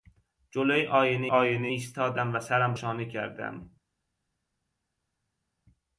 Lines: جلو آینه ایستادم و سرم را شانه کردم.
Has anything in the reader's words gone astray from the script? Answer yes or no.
yes